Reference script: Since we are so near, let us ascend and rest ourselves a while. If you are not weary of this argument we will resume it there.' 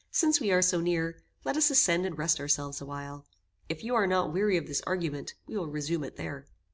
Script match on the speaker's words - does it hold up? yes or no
yes